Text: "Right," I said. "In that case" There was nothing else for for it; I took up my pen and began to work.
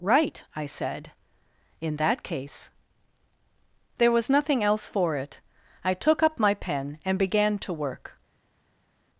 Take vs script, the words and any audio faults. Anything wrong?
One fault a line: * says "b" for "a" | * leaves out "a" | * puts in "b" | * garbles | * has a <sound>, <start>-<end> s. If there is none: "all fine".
* leaves out "for"